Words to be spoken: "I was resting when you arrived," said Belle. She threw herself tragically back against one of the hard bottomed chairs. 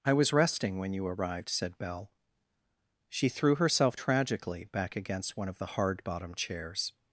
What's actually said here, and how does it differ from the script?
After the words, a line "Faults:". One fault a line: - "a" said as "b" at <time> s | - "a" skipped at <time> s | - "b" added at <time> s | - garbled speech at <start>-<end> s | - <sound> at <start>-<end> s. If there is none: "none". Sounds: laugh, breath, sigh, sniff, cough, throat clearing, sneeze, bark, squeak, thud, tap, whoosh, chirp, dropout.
"I was resting when you arrived," said Belle. She threw herself tragically back against one of the hard bottomed chairs.
Faults:
none